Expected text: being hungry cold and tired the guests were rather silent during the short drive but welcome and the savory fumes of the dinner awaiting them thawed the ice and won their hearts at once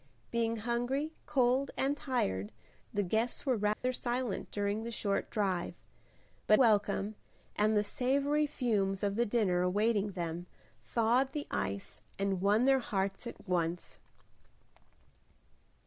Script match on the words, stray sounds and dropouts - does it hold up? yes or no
no